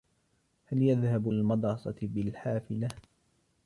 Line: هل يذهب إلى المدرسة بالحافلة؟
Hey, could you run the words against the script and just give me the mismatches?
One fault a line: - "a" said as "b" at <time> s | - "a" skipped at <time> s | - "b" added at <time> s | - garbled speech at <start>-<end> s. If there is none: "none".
- "إلى" skipped at 1.3 s